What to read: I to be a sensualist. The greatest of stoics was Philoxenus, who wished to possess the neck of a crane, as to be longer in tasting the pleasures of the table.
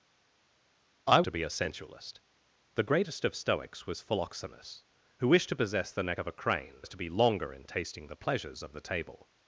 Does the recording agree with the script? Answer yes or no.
yes